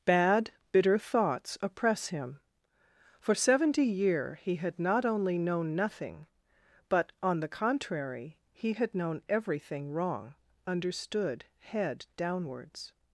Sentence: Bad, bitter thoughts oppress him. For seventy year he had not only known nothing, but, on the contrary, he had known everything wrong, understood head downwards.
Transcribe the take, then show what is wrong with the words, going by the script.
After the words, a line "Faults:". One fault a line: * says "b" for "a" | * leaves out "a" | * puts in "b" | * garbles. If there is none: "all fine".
Bad, bitter thoughts oppress him. For seventy year he had not only known nothing, but, on the contrary, he had known everything wrong, understood head downwards.
Faults:
all fine